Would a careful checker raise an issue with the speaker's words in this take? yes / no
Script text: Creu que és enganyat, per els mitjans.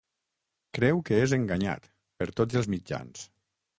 yes